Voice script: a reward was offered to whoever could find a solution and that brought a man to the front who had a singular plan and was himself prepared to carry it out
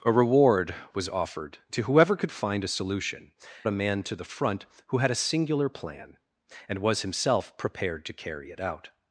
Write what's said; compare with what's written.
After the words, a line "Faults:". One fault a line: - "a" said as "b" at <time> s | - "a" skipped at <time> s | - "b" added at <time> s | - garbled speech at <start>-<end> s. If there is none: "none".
a reward was offered to whoever could find a solution a man to the front who had a singular plan and was himself prepared to carry it out
Faults:
- "and that brought" skipped at 3.3 s